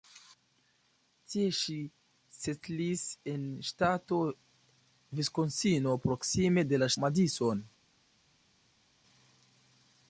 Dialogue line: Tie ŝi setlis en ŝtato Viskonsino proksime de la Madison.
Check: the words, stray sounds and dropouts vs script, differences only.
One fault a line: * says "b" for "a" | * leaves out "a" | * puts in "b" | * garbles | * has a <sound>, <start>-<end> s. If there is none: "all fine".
all fine